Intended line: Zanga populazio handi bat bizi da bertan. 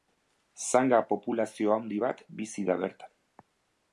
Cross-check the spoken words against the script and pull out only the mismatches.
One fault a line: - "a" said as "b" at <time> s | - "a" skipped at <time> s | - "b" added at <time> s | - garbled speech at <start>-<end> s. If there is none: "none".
none